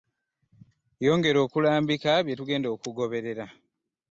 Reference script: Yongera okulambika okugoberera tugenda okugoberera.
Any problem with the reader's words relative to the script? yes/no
yes